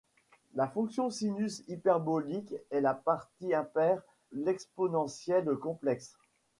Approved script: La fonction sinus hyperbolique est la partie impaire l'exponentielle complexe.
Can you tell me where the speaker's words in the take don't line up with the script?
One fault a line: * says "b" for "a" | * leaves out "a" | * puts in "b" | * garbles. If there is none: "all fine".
all fine